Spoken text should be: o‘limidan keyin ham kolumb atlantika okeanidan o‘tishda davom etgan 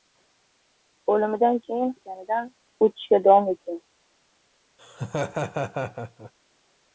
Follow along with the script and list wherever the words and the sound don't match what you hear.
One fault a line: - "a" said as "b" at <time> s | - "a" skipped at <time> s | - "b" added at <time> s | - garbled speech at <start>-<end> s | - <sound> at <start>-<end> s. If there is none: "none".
- "ham kolumb atlantika" skipped at 1.9 s
- laugh at 4.8-6.3 s